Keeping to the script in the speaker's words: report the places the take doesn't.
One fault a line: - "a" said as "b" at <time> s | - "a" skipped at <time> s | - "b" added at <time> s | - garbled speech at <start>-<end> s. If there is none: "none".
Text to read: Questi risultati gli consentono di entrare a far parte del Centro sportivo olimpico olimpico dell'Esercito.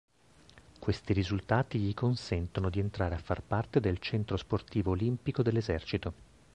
- "olimpico" skipped at 5.4 s